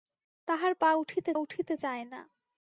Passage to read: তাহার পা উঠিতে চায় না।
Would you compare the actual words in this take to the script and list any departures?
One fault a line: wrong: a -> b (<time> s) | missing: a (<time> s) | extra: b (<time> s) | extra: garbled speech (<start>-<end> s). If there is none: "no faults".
extra: উঠিতে (1.3 s)